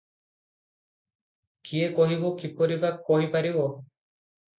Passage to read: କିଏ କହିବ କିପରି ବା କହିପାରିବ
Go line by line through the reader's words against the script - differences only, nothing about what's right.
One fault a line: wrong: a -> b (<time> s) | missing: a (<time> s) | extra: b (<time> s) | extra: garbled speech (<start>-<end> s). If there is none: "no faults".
no faults